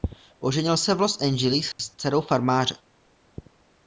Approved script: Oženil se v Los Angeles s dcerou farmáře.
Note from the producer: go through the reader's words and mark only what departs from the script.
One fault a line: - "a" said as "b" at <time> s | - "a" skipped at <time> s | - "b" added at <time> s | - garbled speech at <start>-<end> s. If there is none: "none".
none